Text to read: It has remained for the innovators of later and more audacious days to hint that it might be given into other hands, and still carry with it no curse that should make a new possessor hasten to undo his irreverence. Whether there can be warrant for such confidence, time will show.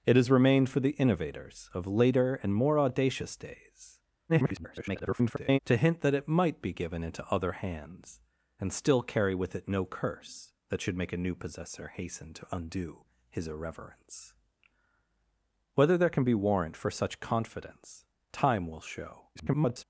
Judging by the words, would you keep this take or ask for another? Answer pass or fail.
fail